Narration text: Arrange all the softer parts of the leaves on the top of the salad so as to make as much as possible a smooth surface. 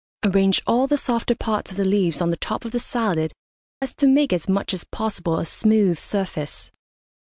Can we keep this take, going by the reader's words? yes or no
no